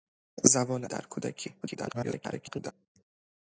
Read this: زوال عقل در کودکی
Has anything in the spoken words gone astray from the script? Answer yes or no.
yes